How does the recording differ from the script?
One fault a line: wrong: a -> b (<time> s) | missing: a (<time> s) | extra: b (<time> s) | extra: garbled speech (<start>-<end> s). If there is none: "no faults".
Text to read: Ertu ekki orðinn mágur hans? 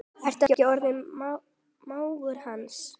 no faults